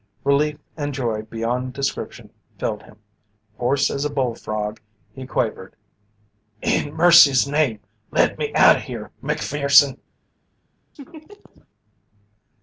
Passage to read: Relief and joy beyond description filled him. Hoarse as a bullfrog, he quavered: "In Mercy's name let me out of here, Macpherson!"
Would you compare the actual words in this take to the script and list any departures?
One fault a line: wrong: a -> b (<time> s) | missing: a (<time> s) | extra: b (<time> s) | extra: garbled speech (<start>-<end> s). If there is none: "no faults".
no faults